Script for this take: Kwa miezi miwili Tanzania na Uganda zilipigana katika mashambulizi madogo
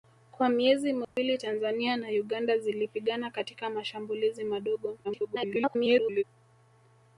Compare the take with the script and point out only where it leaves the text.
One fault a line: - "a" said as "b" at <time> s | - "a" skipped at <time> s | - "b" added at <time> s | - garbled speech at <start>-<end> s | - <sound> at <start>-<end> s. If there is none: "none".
- dropout at 1.0-1.2 s
- garbled speech at 5.0-6.2 s